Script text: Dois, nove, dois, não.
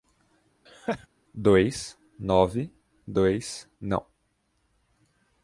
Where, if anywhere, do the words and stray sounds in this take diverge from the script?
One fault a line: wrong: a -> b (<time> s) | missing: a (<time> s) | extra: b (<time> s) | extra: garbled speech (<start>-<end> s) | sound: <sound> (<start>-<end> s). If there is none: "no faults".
sound: laugh (0.7-1.1 s)